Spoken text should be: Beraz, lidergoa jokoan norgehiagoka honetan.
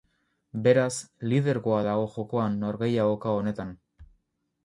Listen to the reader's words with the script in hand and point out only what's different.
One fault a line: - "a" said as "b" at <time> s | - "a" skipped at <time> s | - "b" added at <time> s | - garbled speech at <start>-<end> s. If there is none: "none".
- "dago" added at 1.9 s